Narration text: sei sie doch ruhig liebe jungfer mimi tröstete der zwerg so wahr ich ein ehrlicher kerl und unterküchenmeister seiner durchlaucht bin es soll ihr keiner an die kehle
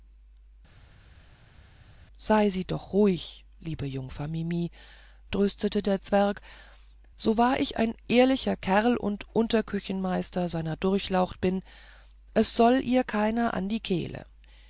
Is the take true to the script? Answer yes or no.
yes